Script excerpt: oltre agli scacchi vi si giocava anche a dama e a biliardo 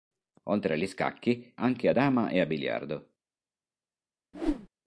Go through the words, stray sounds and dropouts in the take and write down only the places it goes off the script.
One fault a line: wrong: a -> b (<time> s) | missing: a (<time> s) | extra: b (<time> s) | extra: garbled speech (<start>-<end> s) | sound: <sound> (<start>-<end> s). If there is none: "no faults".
missing: vi si giocava (1.5 s)
sound: whoosh (4.3-4.7 s)